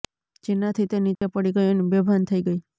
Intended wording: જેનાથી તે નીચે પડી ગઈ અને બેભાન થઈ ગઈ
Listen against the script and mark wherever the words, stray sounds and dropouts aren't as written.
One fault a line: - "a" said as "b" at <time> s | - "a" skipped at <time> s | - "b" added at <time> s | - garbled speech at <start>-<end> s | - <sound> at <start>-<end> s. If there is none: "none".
- dropout at 1.2-1.2 s